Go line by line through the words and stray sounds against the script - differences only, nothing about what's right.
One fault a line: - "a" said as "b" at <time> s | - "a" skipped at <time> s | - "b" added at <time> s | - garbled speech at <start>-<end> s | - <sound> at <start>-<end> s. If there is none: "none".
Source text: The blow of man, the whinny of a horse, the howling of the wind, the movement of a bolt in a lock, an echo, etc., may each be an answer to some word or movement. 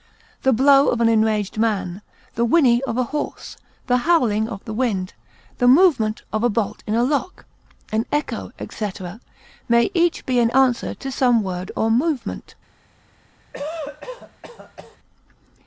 - "an enraged" added at 1.0 s
- cough at 13.5-15.0 s